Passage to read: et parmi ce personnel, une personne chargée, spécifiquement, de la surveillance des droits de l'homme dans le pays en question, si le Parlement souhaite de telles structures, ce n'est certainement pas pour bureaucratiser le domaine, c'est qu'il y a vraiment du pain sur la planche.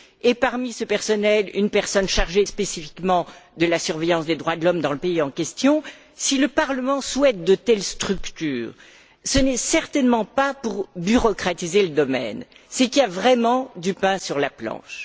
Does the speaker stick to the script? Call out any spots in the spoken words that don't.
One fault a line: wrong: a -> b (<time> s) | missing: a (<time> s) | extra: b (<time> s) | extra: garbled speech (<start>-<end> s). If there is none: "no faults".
no faults